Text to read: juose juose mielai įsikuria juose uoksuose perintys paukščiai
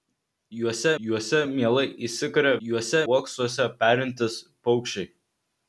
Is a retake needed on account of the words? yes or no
no